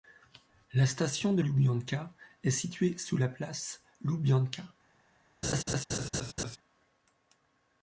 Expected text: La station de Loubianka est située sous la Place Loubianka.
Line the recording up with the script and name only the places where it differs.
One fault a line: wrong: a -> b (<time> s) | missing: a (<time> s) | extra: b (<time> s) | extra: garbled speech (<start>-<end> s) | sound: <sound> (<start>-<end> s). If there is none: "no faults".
sound: laugh (5.4-6.6 s)